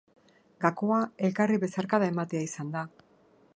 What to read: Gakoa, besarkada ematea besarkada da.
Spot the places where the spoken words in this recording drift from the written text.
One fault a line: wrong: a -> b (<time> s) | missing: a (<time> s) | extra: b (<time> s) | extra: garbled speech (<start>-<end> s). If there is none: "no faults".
extra: elkarri (1.3 s)
wrong: besarkada -> izan (2.5 s)